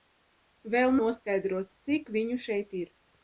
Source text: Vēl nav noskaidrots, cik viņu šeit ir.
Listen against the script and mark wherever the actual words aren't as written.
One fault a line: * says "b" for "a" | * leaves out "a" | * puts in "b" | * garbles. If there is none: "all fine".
* leaves out "nav"